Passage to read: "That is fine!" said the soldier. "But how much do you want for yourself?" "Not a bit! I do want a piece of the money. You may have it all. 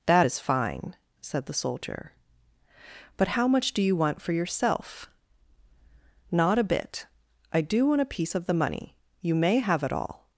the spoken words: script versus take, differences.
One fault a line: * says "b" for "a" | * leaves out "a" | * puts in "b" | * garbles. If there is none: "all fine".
all fine